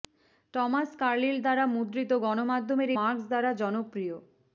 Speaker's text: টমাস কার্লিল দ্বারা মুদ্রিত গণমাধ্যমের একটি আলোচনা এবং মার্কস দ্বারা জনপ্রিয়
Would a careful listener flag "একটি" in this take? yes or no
yes